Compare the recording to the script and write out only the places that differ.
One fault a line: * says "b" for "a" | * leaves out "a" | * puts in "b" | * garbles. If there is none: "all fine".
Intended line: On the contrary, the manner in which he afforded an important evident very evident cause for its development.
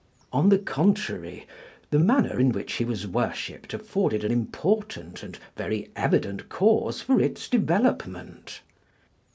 * puts in "was worshipped"
* says "and" for "evident"